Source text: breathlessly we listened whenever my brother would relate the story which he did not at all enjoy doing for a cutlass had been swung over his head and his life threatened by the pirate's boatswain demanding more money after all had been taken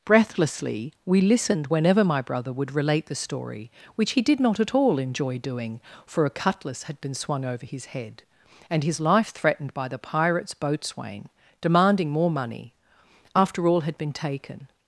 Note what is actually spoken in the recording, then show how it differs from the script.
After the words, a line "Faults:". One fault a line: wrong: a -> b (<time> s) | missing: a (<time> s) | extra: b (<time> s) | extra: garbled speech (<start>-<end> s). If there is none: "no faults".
breathlessly we listened whenever my brother would relate the story which he did not at all enjoy doing for a cutlass had been swung over his head and his life threatened by the pirate's boatswain demanding more money after all had been taken
Faults:
no faults